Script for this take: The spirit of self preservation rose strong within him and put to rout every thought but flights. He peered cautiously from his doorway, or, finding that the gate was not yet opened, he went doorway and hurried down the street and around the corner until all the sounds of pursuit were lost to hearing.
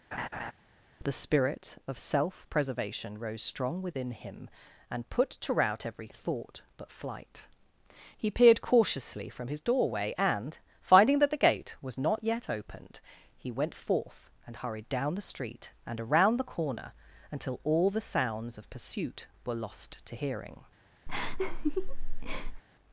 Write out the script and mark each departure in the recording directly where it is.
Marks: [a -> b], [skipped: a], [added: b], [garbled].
The spirit of self preservation rose strong within him and put to rout every thought but [flights. -> flight] He peered cautiously from his doorway, [or, -> and] finding that the gate was not yet opened, he went [doorway -> forth] and hurried down the street and around the corner until all the sounds of pursuit were lost to hearing.